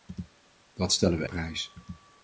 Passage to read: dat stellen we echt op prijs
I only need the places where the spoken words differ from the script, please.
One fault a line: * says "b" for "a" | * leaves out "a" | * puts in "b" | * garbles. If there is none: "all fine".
* leaves out "echt op"